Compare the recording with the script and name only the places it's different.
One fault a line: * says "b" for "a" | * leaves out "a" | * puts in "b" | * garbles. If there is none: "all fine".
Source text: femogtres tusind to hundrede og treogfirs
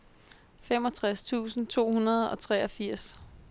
all fine